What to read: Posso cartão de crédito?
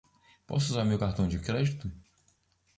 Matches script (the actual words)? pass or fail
fail